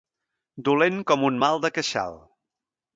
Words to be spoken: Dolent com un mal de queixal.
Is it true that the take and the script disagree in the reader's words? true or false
false